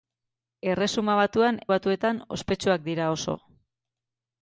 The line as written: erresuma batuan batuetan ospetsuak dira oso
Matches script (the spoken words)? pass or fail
pass